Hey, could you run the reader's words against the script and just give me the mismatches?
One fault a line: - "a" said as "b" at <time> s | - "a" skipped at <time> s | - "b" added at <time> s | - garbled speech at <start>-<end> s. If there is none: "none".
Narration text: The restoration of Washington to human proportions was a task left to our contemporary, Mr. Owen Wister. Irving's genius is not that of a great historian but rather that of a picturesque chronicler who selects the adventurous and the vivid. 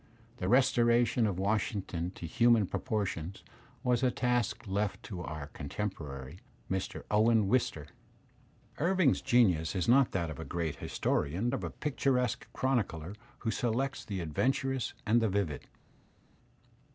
- "but rather that" skipped at 11.5 s